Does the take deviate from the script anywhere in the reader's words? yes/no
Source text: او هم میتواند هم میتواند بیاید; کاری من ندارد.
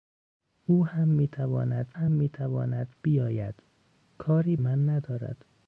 no